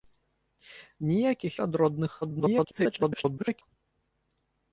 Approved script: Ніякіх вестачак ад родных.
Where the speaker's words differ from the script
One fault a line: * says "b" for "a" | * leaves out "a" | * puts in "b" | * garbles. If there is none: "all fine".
* leaves out "вестачак"
* garbles